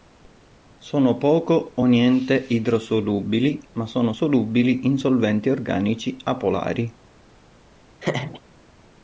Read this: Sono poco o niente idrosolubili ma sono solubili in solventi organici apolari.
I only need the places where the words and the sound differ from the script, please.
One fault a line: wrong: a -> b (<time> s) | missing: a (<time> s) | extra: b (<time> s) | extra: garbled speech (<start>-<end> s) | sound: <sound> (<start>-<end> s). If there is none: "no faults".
sound: laugh (8.0-8.4 s)